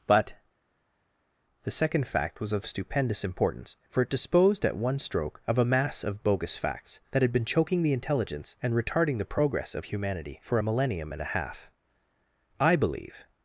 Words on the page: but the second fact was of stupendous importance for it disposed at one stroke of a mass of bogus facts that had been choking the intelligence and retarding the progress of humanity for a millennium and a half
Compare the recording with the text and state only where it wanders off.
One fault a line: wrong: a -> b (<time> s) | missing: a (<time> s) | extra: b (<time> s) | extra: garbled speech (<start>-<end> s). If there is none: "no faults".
extra: i believe (12.6 s)